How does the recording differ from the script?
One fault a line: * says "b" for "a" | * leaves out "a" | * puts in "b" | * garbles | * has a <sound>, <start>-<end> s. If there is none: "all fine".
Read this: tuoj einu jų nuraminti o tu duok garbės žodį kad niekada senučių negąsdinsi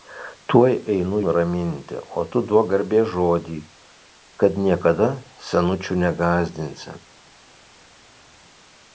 * leaves out "jų"